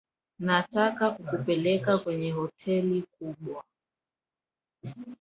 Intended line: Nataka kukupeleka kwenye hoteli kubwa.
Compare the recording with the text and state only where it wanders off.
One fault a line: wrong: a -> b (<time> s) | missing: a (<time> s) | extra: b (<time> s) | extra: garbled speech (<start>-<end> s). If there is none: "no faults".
no faults